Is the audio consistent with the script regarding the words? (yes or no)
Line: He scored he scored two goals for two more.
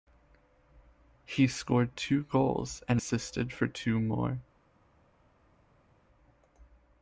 no